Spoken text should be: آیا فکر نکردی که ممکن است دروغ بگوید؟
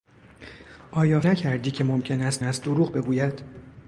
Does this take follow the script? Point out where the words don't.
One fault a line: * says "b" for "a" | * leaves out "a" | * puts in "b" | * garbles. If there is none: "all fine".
* leaves out "فکر"
* puts in "است"